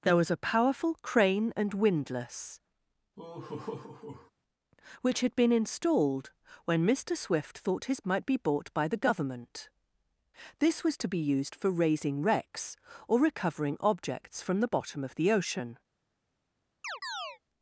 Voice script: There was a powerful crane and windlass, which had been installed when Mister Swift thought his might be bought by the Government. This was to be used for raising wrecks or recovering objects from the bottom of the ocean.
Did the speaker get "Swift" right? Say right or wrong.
right